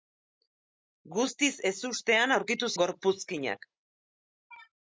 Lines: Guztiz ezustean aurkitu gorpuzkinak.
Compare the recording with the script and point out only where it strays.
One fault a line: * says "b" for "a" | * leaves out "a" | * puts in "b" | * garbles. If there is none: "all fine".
all fine